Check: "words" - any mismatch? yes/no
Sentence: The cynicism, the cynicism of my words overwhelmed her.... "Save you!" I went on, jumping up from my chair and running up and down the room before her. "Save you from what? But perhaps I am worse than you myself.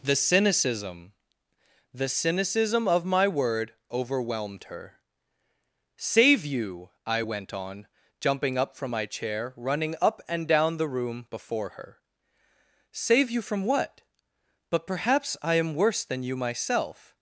yes